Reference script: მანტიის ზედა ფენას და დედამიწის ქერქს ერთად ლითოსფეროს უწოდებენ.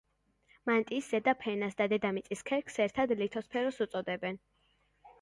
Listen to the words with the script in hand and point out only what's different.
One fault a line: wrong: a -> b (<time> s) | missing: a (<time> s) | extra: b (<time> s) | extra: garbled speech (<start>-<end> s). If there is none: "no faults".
no faults